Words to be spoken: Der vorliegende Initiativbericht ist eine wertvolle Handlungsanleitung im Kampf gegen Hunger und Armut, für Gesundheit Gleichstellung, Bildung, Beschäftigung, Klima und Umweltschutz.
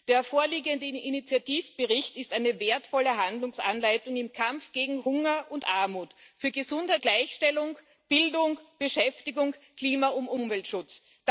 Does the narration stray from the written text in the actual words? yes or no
no